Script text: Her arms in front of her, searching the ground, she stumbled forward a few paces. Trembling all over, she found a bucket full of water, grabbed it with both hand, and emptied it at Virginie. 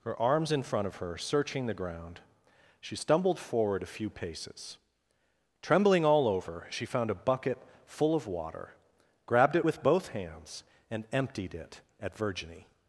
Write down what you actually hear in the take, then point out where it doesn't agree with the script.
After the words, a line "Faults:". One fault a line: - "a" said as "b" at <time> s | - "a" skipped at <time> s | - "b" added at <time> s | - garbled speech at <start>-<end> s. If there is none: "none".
Her arms in front of her, searching the ground, she stumbled forward a few paces. Trembling all over, she found a bucket full of water, grabbed it with both hands, and emptied it at Virginie.
Faults:
- "hand" said as "hands" at 10.1 s